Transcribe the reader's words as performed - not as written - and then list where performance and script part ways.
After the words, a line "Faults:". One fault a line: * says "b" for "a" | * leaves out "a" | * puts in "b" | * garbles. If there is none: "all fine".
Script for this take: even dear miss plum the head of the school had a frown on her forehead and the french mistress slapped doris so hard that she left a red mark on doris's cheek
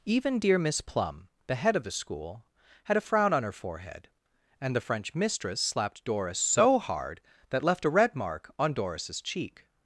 even dear miss plum the head of the school had a frown on her forehead and the french mistress slapped doris so hard that left a red mark on doris's cheek
Faults:
* leaves out "she"